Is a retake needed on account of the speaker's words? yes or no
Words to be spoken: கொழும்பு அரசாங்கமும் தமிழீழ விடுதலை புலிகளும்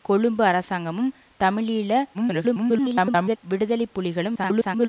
yes